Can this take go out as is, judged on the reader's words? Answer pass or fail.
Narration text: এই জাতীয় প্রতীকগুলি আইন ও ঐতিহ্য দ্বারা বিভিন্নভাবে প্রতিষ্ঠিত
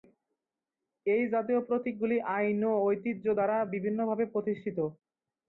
pass